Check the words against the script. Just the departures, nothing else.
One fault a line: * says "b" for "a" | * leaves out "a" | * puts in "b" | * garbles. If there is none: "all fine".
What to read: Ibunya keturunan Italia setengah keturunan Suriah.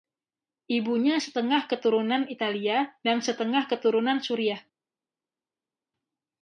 * puts in "setengah"
* puts in "dan"